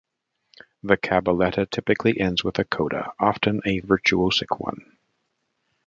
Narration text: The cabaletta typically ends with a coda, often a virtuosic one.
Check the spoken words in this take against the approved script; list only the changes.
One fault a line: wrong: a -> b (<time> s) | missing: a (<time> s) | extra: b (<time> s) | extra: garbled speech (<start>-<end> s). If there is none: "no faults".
no faults